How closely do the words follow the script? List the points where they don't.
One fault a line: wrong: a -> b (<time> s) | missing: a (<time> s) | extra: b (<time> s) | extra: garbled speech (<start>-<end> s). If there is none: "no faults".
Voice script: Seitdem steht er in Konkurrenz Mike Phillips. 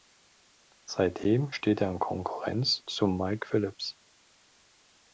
extra: zu (2.9 s)